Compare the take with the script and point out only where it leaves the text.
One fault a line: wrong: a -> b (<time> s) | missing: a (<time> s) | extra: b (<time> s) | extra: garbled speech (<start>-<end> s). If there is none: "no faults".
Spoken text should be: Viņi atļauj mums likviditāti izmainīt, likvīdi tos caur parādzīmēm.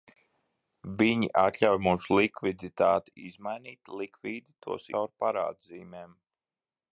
no faults